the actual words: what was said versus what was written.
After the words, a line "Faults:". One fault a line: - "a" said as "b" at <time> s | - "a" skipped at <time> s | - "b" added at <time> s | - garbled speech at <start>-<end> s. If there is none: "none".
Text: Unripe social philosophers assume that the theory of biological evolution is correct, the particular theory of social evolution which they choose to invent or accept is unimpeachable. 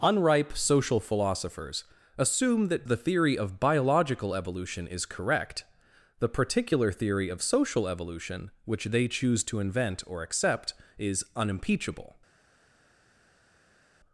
Unripe social philosophers assume that the theory of biological evolution is correct, the particular theory of social evolution which they choose to invent or accept is unimpeachable.
Faults:
none